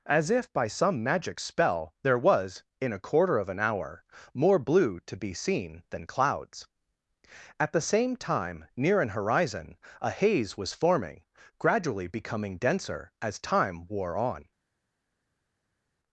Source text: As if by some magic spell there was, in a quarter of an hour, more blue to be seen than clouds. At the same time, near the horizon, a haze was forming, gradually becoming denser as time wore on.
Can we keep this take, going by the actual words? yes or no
no